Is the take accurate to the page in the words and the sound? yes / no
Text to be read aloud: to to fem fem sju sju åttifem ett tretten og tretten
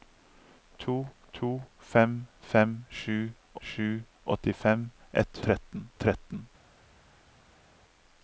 yes